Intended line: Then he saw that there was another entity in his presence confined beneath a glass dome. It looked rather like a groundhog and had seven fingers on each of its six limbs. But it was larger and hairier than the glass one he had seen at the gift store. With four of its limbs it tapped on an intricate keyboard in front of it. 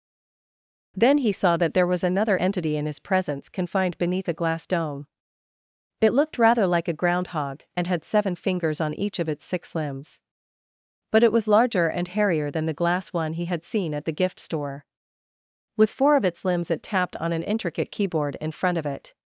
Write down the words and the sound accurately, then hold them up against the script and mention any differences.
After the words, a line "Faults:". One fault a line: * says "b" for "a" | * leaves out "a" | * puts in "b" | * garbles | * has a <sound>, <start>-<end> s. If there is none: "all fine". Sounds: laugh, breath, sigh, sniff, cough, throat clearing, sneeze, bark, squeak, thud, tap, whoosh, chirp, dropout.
Then he saw that there was another entity in his presence confined beneath a glass dome. It looked rather like a groundhog and had seven fingers on each of its six limbs. But it was larger and hairier than the glass one he had seen at the gift store. With four of its limbs it tapped on an intricate keyboard in front of it.
Faults:
all fine